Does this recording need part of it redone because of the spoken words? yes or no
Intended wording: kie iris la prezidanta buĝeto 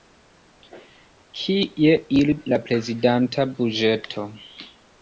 no